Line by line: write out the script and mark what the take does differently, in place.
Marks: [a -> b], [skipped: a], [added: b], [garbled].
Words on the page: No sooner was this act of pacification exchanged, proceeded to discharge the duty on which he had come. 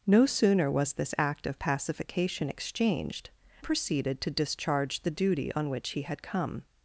No sooner was this act of pacification exchanged, proceeded to discharge the duty on which he had come.